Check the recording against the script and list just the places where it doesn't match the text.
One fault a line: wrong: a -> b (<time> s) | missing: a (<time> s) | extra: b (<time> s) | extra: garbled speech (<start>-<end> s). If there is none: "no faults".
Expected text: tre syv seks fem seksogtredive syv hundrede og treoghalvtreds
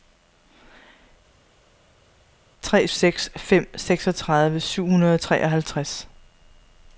missing: syv (2.9 s)